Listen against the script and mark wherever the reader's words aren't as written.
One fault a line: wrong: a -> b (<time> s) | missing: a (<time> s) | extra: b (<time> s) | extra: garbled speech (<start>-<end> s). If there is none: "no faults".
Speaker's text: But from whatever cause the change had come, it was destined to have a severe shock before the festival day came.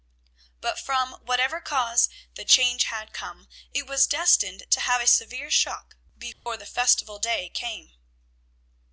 no faults